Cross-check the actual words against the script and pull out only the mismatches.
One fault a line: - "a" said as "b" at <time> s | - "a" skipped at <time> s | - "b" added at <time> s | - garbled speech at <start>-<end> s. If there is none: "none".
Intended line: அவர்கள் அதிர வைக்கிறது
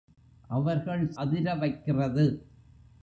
none